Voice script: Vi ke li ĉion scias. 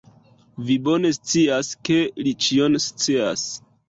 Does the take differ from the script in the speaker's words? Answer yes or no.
yes